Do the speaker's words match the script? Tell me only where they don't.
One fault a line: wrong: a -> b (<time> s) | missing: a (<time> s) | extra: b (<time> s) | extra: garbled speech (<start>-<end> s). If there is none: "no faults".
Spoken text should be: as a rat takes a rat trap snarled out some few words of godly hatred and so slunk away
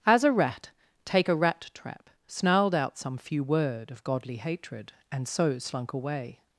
wrong: takes -> take (1.1 s)
wrong: words -> word (3.4 s)